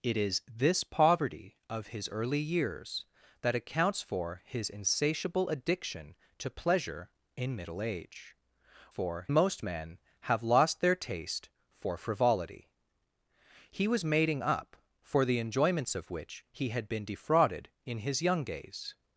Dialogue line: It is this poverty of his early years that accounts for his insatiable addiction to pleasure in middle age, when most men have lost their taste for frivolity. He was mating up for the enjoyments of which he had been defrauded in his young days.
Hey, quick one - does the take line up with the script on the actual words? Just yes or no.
no